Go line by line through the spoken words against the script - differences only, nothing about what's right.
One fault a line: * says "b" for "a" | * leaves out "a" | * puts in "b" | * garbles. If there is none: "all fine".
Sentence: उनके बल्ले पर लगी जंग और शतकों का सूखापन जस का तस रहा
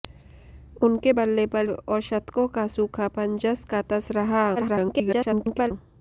* leaves out "लगी जंग"
* garbles